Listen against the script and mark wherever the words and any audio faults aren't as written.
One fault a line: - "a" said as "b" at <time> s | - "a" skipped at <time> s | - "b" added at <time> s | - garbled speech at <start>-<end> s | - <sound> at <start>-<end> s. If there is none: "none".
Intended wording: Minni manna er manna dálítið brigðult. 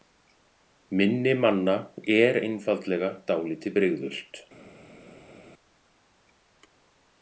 - "manna" said as "einfaldlega" at 2.5 s